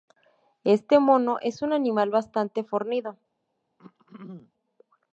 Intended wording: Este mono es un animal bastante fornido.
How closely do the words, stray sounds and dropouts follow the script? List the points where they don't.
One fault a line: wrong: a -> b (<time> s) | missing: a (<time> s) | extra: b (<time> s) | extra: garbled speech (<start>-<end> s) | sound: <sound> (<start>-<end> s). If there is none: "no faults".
sound: throat clearing (3.8-4.5 s)